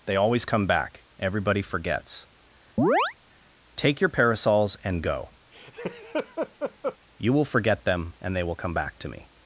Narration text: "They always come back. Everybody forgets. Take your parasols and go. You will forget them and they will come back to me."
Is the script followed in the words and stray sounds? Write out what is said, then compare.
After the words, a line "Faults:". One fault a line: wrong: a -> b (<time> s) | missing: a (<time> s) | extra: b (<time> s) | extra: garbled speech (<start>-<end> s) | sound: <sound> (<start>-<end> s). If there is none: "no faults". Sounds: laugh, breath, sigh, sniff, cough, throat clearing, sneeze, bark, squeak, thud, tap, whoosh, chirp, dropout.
"They always come back. Everybody forgets. Take your parasols and go. You will forget them and they will come back to me."
Faults:
sound: chirp (2.8-3.1 s)
sound: laugh (5.5-7.0 s)